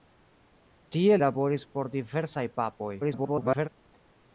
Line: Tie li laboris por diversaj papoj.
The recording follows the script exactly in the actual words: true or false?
false